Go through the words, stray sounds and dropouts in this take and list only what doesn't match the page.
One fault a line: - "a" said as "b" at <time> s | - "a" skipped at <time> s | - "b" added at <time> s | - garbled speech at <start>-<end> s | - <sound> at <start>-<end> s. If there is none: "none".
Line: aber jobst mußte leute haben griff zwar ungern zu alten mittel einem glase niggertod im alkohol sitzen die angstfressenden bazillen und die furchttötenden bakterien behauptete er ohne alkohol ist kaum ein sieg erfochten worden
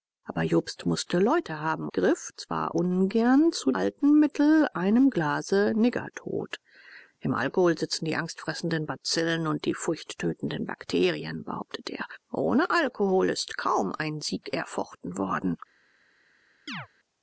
- chirp at 16.7-16.9 s